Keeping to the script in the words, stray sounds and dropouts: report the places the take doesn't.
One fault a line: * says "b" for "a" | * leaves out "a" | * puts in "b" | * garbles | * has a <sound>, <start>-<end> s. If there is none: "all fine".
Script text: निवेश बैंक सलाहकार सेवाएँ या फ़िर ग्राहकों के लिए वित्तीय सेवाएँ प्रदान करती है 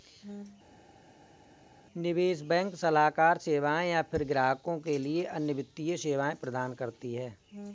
* puts in "अन्य"